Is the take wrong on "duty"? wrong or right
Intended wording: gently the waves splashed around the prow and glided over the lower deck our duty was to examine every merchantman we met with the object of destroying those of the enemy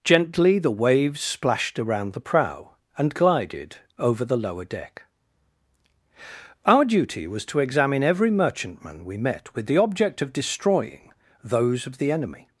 right